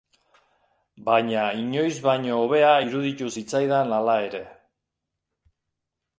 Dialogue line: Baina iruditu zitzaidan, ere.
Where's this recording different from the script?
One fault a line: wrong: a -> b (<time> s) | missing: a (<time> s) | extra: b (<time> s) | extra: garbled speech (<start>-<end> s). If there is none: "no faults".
extra: inoiz baino hobea (1.6 s)
extra: hala (4.0 s)